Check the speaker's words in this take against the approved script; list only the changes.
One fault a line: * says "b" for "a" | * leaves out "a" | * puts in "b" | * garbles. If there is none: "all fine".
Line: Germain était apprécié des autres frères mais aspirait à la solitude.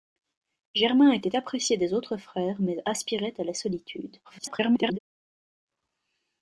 * garbles